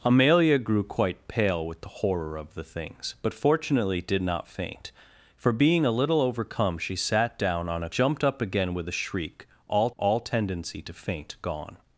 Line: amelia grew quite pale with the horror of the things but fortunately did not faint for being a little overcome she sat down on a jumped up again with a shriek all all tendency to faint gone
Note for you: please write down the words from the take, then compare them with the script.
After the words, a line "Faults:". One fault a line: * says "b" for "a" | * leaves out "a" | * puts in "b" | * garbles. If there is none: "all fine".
amelia grew quite pale with the horror of the things but fortunately did not faint for being a little overcome she sat down on a jumped up again with a shriek all all tendency to faint gone
Faults:
all fine